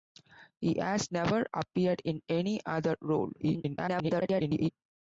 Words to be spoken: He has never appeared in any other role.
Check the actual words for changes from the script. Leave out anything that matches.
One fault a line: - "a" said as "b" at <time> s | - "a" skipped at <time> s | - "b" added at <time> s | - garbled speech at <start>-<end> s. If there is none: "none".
- garbled speech at 3.4-4.7 s